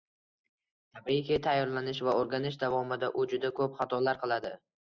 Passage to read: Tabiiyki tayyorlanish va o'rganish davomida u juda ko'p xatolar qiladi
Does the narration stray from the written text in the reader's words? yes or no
no